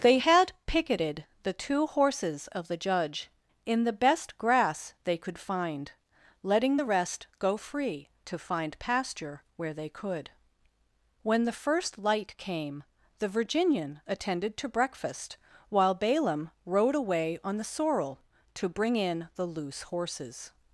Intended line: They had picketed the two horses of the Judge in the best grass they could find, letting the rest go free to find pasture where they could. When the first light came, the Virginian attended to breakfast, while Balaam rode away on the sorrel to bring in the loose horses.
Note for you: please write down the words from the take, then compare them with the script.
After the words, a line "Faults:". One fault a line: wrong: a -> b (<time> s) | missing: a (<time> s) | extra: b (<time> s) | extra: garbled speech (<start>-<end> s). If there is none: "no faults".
They had picketed the two horses of the Judge in the best grass they could find, letting the rest go free to find pasture where they could. When the first light came, the Virginian attended to breakfast, while Balaam rode away on the sorrel to bring in the loose horses.
Faults:
no faults